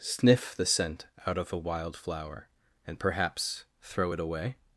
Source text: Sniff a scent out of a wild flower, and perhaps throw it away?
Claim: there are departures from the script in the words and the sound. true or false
true